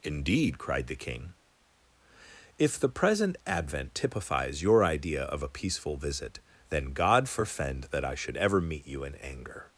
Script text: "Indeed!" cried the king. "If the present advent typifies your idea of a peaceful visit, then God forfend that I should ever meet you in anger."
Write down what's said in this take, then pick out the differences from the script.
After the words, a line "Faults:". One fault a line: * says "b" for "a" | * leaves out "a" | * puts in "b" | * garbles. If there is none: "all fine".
"Indeed!" cried the king. "If the present advent typifies your idea of a peaceful visit, then God forfend that I should ever meet you in anger."
Faults:
all fine